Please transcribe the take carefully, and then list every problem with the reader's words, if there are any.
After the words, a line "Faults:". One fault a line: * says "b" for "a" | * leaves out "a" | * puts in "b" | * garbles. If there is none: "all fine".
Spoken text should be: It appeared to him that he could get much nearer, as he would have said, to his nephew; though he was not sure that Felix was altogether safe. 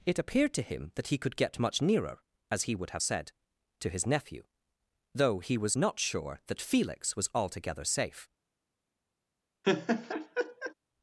It appeared to him that he could get much nearer, as he would have said, to his nephew; though he was not sure that Felix was altogether safe.
Faults:
all fine